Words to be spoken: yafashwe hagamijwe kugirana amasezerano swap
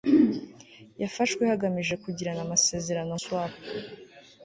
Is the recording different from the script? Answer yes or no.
no